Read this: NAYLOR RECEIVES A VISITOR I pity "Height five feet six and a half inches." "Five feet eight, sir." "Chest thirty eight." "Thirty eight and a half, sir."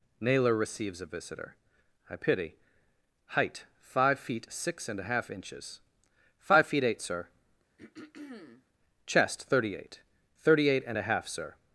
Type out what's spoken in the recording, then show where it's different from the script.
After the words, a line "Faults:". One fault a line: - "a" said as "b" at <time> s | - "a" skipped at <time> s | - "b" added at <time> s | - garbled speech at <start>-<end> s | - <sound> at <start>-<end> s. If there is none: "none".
NAYLOR RECEIVES A VISITOR I pity "Height five feet six and a half inches." "Five feet eight, sir." "Chest thirty eight." "Thirty eight and a half, sir."
Faults:
- throat clearing at 7.8-8.7 s